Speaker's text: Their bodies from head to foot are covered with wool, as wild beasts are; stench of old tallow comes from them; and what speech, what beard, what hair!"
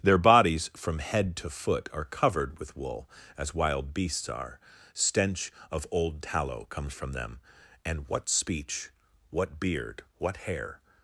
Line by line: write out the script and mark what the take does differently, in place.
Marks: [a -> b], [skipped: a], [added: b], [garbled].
Their bodies from head to foot are covered with wool, as wild beasts are; stench of old tallow comes from them; and what speech, what beard, what hair!"